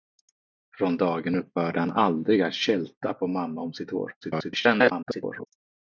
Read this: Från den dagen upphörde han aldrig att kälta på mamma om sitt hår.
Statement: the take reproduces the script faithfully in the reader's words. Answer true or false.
false